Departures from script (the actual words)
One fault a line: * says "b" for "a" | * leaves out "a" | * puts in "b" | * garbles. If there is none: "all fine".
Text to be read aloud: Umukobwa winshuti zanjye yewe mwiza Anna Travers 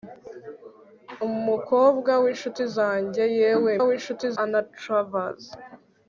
* says "winshuti" for "mwiza"